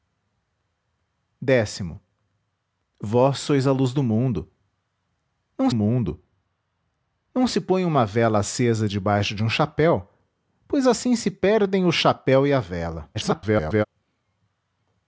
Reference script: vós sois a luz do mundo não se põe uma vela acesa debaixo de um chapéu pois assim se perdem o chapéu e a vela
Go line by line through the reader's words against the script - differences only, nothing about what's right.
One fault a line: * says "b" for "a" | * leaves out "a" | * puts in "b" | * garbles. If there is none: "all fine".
* puts in "mundo não"
* garbles